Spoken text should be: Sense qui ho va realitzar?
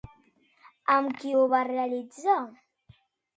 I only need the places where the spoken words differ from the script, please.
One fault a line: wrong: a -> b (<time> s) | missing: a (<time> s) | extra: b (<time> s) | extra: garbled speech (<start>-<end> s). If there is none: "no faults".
wrong: Sense -> Amb (0.9 s)